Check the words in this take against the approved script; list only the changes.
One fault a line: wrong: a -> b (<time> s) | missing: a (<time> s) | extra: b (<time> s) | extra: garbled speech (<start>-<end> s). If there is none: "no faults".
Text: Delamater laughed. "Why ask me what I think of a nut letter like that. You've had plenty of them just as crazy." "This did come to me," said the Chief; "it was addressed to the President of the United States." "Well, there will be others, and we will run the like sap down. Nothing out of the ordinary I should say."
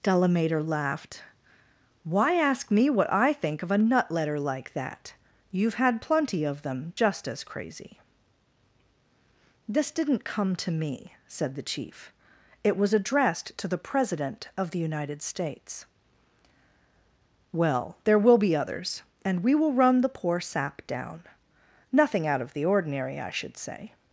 wrong: did -> didn't (9.9 s)
wrong: like -> poor (20.1 s)